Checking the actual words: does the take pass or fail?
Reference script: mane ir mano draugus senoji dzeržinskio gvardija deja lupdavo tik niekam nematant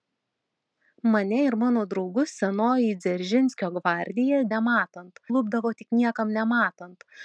fail